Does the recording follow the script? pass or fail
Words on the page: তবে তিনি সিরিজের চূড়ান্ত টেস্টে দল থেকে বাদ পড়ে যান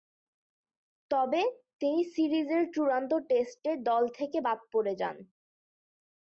pass